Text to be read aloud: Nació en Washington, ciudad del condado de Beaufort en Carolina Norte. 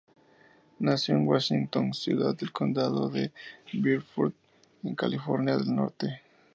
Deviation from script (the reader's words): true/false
true